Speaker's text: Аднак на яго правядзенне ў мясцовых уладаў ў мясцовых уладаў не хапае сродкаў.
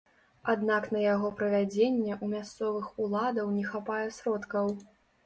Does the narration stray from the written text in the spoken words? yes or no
yes